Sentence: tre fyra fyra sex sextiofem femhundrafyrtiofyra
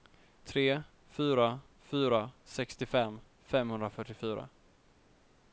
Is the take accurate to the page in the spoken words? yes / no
no